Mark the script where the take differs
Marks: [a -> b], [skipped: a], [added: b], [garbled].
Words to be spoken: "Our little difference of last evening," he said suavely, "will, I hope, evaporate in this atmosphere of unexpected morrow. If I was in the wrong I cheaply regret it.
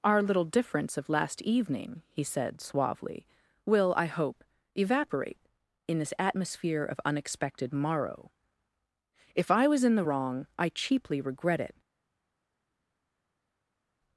"Our little difference of last evening," he said suavely, "will, I hope, evaporate in this atmosphere of unexpected morrow. If I was in the wrong I cheaply regret it.